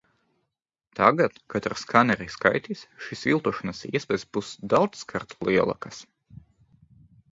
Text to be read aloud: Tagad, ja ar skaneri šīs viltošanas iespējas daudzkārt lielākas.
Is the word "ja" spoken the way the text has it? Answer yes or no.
no